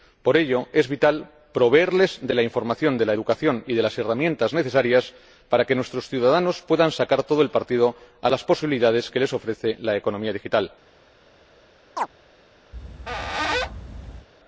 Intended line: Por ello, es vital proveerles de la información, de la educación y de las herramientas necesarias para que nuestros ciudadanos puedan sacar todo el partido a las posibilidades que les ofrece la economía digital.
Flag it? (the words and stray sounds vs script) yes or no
yes